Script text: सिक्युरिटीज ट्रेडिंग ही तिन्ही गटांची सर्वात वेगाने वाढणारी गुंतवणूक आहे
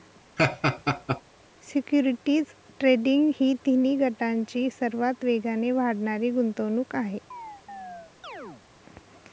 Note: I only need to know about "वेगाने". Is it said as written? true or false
true